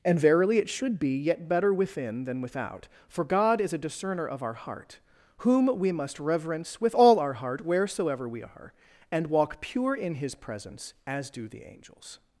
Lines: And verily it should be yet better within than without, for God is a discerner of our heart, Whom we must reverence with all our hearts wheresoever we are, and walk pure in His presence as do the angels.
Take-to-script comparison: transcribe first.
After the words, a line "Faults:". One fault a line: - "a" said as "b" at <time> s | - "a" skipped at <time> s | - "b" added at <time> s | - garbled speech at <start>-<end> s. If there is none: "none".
And verily it should be yet better within than without, for God is a discerner of our heart, Whom we must reverence with all our heart wheresoever we are, and walk pure in His presence as do the angels.
Faults:
- "hearts" said as "heart" at 7.3 s